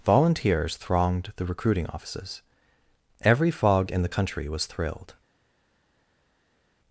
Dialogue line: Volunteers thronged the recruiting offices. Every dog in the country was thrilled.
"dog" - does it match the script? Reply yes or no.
no